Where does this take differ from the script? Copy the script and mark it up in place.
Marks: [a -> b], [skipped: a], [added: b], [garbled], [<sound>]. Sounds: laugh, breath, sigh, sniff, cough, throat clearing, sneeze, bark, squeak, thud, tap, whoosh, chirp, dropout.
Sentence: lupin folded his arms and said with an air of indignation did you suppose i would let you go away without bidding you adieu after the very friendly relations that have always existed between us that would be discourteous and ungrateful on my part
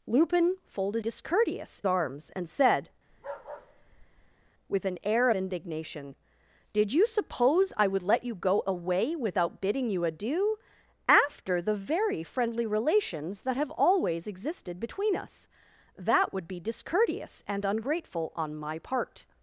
lupin folded [his -> discourteous] arms and said [bark] with an air [skipped: of] indignation did you suppose i would let you go away without bidding you adieu after the very friendly relations that have always existed between us that would be discourteous and ungrateful on my part